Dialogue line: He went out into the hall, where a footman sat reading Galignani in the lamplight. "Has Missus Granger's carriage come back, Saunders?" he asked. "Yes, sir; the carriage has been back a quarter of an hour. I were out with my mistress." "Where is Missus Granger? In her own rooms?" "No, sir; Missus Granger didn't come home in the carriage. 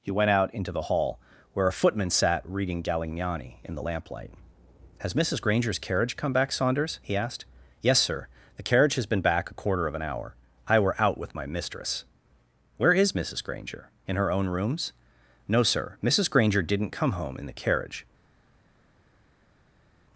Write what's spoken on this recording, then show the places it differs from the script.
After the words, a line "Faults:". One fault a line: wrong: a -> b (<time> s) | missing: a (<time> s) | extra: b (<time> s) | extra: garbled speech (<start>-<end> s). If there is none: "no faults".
He went out into the hall, where a footman sat reading Galignani in the lamplight. "Has Missus Granger's carriage come back, Saunders?" he asked. "Yes, sir; the carriage has been back a quarter of an hour. I were out with my mistress." "Where is Missus Granger? In her own rooms?" "No, sir; Missus Granger didn't come home in the carriage.
Faults:
no faults